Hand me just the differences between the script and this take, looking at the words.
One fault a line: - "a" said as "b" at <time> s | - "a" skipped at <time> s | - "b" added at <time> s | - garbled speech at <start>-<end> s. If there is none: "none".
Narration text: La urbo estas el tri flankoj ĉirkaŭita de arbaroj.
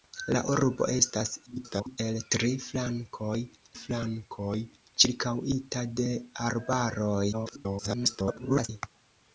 - garbled speech at 1.5-2.0 s
- "flankoj" added at 3.8 s
- garbled speech at 7.3-8.7 s